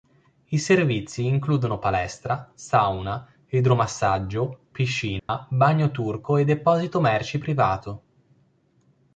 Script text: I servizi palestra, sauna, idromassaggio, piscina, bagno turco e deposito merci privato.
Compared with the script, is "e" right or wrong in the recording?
right